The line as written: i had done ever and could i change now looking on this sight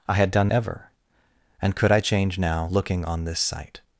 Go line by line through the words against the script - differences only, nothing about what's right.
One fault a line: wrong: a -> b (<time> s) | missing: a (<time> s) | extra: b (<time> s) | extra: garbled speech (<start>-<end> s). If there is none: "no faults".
no faults